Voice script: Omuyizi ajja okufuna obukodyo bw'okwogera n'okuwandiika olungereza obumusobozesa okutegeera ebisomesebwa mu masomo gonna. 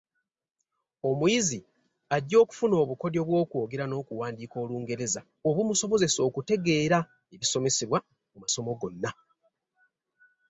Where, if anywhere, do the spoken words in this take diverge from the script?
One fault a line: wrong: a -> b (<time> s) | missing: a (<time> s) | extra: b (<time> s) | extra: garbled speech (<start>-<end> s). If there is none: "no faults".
no faults